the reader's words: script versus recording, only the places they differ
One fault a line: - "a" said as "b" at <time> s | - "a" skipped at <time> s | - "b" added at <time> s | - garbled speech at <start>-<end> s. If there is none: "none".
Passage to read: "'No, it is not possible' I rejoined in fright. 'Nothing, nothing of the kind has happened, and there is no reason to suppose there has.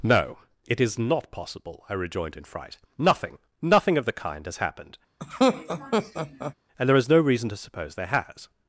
none